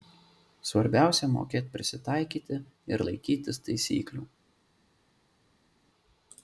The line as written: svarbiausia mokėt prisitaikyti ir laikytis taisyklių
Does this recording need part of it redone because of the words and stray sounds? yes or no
no